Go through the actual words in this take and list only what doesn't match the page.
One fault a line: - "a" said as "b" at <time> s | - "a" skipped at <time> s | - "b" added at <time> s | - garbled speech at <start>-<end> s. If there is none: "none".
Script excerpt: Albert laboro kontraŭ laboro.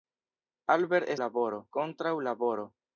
none